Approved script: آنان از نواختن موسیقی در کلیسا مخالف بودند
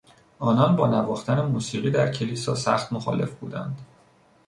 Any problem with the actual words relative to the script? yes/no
yes